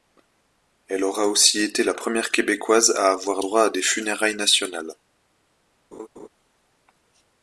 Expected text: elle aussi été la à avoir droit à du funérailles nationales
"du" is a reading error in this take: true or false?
true